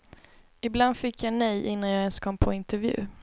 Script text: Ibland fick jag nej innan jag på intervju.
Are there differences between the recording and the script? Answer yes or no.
yes